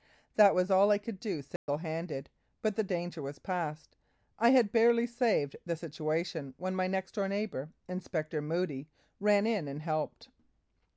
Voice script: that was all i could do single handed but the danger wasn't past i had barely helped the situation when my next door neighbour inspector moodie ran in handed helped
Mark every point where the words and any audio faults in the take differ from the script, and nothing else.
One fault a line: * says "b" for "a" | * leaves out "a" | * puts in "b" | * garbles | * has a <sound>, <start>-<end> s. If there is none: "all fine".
* has a dropout, 1.6-1.7 s
* says "was" for "wasn't"
* says "saved" for "helped"
* says "and" for "handed"